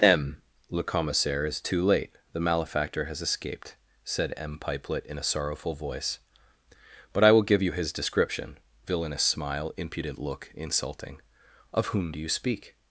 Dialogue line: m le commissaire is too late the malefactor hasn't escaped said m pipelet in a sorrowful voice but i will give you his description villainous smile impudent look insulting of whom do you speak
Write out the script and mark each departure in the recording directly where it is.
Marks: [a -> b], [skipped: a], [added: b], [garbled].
m le commissaire is too late the malefactor [hasn't -> has] escaped said m pipelet in a sorrowful voice but i will give you his description villainous smile impudent look insulting of whom do you speak